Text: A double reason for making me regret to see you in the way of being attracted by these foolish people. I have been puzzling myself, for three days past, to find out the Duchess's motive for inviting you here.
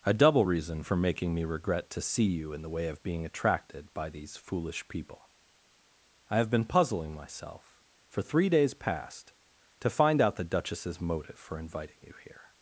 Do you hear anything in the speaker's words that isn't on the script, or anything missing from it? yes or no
no